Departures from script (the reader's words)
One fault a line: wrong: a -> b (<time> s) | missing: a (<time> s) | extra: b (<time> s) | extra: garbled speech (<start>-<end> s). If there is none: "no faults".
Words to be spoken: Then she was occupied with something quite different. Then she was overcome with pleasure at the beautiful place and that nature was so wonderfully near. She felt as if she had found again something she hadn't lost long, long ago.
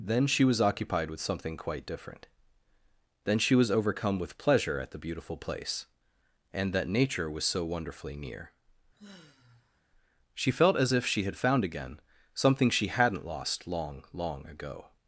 no faults